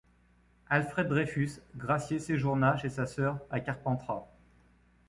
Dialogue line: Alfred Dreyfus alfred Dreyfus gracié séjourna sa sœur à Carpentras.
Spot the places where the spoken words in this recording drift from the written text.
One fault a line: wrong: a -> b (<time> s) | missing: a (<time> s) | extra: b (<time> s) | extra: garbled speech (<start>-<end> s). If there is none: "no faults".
missing: alfred Dreyfus (1.6 s)
extra: chez (2.7 s)